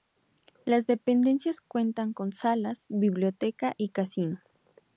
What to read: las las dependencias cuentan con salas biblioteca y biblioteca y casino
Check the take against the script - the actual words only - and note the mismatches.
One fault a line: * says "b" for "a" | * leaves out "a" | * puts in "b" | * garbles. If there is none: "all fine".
* leaves out "las"
* leaves out "biblioteca y"